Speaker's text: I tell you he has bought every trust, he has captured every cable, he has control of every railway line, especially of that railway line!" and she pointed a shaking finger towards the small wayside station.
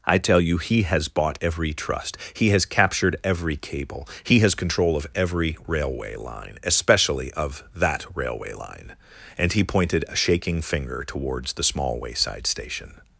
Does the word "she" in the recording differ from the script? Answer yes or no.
yes